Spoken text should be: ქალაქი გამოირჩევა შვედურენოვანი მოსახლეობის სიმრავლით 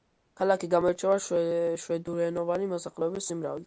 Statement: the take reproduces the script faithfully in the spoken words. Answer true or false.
true